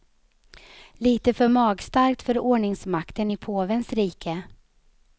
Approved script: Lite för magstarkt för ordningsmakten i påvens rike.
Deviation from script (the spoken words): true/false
false